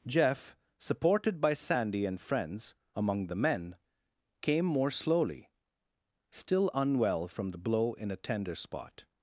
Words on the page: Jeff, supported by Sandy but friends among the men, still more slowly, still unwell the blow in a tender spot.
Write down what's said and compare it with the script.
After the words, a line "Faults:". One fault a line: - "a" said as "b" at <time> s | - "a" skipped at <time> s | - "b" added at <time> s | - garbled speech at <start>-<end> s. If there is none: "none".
Jeff, supported by Sandy and friends among the men, came more slowly, still unwell from the blow in a tender spot.
Faults:
- "but" said as "and" at 2.0 s
- "still" said as "came" at 4.4 s
- "from" added at 7.3 s